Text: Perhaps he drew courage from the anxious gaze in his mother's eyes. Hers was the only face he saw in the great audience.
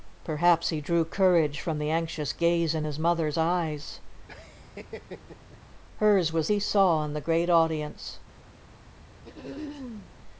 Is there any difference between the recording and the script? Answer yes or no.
yes